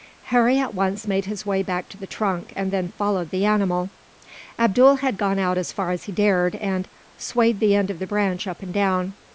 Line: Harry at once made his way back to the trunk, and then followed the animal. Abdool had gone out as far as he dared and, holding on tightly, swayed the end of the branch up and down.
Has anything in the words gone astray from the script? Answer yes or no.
yes